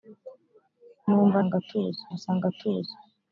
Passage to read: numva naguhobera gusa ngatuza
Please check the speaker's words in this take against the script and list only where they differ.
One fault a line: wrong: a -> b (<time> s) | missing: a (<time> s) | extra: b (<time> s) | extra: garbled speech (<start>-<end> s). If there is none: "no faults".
wrong: naguhobera -> ngatuza (1.5 s)